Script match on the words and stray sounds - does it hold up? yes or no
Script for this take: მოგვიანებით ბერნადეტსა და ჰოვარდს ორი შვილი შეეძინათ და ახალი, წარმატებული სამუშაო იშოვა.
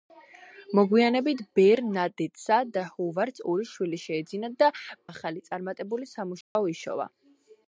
no